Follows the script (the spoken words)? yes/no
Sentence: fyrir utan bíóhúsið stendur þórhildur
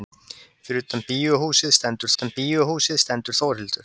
no